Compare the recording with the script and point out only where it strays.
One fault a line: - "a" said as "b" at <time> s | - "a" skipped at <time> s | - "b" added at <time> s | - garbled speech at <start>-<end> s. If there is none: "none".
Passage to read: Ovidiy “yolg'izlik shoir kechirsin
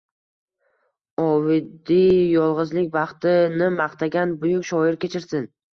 - "baxti”ni maqtagan Buyuk" added at 3.0 s